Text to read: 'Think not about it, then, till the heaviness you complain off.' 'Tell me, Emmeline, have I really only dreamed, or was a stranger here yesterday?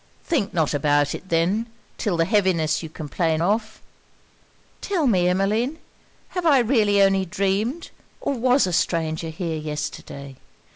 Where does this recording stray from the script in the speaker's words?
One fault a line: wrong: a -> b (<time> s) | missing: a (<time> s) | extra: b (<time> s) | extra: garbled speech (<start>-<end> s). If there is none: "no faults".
no faults